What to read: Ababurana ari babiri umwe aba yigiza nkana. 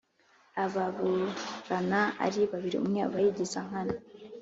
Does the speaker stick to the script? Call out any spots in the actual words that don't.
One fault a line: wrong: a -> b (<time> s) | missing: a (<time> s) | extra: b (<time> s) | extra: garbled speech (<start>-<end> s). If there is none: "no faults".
no faults